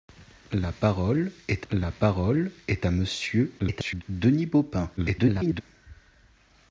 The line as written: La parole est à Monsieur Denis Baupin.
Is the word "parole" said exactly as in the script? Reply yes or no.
yes